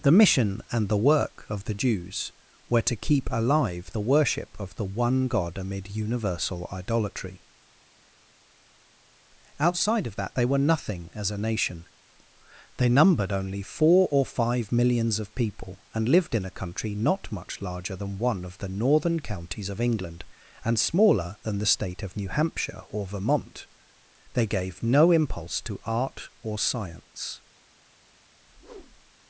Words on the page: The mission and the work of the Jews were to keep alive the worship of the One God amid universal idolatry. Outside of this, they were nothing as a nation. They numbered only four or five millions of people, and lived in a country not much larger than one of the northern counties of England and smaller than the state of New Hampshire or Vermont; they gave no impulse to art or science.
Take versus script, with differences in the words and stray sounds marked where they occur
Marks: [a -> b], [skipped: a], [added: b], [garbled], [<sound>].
The mission and the work of the Jews were to keep alive the worship of the One God amid universal idolatry. Outside of [this, -> that] they were nothing as a nation. They numbered only four or five millions of people, and lived in a country not much larger than one of the northern counties of England and smaller than the state of New Hampshire or Vermont; they gave no impulse to art or science. [whoosh]